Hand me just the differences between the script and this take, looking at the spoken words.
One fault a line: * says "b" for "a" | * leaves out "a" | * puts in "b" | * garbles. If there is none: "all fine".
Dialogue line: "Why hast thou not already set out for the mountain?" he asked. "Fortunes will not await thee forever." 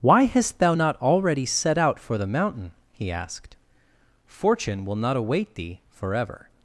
* says "Fortune" for "Fortunes"